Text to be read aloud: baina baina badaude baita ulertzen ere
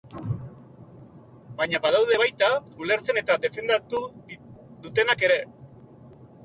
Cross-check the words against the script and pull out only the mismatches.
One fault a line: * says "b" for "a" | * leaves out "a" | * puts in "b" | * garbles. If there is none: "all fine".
* leaves out "baina"
* puts in "eta defendatu dutenak"